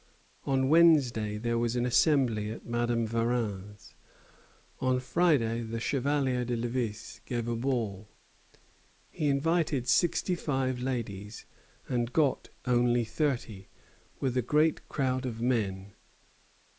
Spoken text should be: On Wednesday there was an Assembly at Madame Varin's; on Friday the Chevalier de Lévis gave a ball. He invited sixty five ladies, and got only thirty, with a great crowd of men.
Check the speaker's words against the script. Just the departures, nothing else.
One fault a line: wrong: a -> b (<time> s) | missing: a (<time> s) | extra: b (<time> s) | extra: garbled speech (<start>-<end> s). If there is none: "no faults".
no faults